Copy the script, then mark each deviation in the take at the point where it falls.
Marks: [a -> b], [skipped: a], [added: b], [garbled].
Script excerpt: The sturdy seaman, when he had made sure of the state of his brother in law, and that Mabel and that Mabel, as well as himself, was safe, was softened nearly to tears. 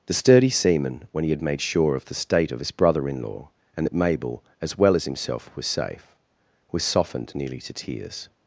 The sturdy seaman, when he had made sure of the state of his brother in law, and that Mabel [skipped: and that Mabel,] as well as himself, was safe, was softened nearly to tears.